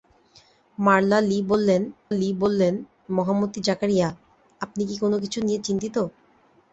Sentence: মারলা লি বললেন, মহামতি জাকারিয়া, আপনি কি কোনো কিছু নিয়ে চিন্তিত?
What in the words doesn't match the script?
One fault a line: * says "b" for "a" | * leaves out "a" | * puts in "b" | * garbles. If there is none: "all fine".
* puts in "লি বললেন"